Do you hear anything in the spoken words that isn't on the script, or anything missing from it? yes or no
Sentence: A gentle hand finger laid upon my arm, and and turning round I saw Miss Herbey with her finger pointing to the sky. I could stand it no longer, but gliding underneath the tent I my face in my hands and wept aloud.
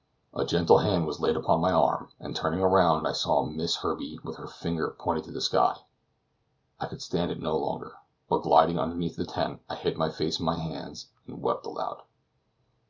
yes